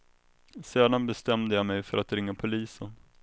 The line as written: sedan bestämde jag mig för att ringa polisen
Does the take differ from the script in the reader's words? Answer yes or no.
no